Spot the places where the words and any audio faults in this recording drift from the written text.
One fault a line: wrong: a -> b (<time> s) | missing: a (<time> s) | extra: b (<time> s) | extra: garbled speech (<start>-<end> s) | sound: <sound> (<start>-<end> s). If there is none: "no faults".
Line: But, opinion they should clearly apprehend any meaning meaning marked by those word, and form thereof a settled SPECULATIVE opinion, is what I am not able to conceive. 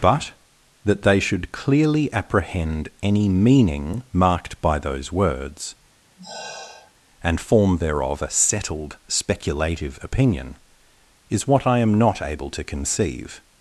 wrong: opinion -> that (0.8 s)
missing: meaning (4.0 s)
wrong: word -> words (5.1 s)
sound: sigh (6.2-6.9 s)